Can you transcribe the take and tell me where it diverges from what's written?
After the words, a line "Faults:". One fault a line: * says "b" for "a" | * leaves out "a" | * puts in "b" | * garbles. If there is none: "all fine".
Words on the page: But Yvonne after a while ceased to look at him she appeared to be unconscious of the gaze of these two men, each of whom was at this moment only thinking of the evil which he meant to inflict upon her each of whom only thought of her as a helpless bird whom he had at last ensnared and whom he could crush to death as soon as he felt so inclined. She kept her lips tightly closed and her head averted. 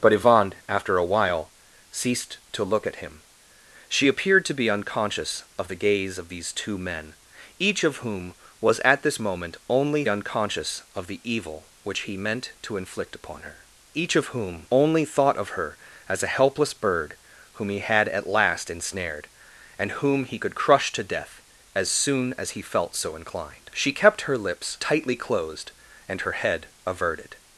But Yvonne after a while ceased to look at him she appeared to be unconscious of the gaze of these two men, each of whom was at this moment only unconscious of the evil which he meant to inflict upon her each of whom only thought of her as a helpless bird whom he had at last ensnared and whom he could crush to death as soon as he felt so inclined. She kept her lips tightly closed and her head averted.
Faults:
* says "unconscious" for "thinking"